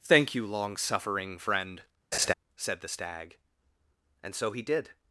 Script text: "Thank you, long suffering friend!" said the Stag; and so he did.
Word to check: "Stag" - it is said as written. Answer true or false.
true